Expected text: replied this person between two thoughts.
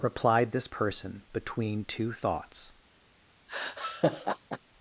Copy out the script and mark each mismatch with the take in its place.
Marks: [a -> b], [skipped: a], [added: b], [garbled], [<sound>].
replied this person between two thoughts. [laugh]